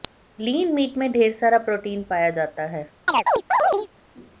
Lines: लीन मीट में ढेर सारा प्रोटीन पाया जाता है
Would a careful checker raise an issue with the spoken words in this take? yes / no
no